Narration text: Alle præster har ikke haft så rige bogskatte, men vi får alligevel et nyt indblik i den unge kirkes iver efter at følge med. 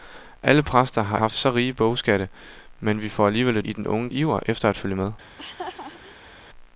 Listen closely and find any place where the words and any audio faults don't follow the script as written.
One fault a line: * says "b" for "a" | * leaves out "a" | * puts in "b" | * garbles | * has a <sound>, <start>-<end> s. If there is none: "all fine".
* leaves out "ikke"
* leaves out "nyt indblik"
* leaves out "kirkes"
* has a laugh, 5.2-6.3 s